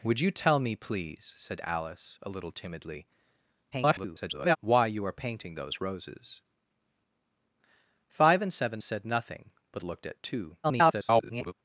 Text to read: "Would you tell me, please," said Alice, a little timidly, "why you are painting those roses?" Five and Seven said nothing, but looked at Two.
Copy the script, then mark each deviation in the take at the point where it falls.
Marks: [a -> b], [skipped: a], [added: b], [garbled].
"Would you tell me, please," said Alice, a little timidly, [garbled] "why you are painting those roses?" Five and Seven said nothing, but looked at Two. [garbled]